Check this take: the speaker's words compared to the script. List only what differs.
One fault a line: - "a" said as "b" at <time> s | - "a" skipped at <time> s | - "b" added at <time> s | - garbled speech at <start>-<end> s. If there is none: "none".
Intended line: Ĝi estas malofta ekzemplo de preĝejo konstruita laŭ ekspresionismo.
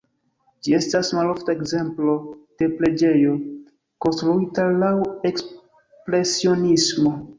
none